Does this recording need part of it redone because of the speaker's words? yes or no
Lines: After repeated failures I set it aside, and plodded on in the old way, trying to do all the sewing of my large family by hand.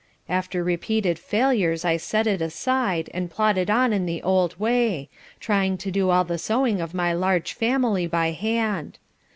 no